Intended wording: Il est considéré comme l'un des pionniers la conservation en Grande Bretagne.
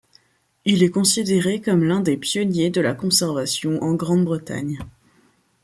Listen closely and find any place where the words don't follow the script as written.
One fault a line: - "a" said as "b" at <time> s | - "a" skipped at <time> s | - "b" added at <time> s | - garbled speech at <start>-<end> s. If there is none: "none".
- "de" added at 2.7 s